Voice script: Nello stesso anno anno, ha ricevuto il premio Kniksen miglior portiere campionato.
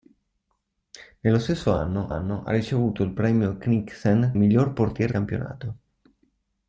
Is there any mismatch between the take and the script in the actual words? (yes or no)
no